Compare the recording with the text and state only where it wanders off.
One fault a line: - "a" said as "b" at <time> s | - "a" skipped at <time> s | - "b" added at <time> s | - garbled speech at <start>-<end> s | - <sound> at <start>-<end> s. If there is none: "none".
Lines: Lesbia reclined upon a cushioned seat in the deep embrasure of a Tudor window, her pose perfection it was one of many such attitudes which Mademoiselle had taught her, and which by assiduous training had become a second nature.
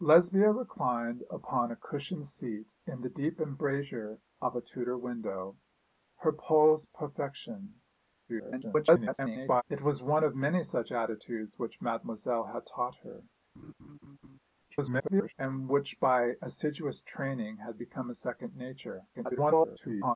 - garbled speech at 8.3-9.6 s
- laugh at 13.5-14.4 s
- garbled speech at 14.7-15.3 s
- garbled speech at 19.1-20.2 s